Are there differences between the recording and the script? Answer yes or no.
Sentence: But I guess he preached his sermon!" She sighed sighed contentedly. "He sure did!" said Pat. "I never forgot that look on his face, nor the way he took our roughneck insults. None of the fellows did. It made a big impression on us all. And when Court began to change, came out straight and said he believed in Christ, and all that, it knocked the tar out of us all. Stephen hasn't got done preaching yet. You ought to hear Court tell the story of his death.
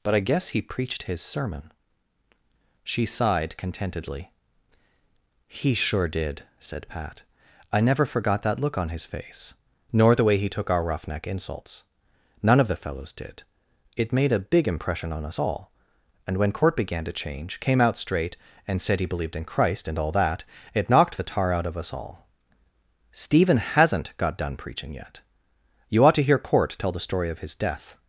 yes